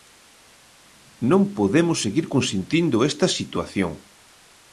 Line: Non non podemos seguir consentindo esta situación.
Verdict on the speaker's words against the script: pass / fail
fail